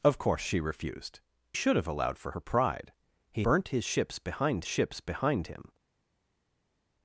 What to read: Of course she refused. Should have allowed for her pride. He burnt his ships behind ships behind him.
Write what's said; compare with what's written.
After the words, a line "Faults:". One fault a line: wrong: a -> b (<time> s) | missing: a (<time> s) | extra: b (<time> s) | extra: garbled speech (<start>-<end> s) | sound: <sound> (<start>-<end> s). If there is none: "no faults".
Of course she refused. Should have allowed for her pride. He burnt his ships behind ships behind him.
Faults:
no faults